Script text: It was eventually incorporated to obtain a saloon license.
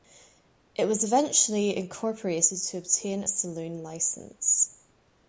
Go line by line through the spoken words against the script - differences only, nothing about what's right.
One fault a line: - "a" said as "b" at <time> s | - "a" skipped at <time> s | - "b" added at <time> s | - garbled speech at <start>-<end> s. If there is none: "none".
none